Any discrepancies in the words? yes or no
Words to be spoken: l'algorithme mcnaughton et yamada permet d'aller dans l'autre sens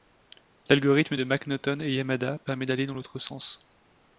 yes